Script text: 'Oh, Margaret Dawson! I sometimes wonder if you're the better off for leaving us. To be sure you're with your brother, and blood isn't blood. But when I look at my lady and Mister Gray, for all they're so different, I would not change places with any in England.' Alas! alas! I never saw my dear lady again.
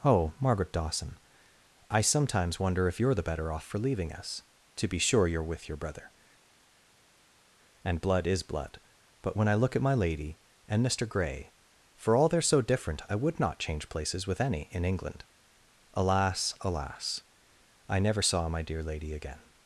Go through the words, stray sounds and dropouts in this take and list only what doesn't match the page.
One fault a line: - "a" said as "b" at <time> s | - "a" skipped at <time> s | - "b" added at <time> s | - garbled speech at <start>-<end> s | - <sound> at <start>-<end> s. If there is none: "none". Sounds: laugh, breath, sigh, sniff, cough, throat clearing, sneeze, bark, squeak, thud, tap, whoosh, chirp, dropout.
- "isn't" said as "is" at 8.3 s